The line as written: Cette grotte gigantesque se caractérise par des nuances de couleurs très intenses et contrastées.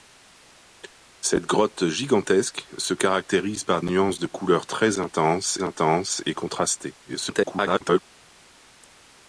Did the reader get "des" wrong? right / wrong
wrong